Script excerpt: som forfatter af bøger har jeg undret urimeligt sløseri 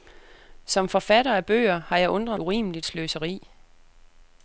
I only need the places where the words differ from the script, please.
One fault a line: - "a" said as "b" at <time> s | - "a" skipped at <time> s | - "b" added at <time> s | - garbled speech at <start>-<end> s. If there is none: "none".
none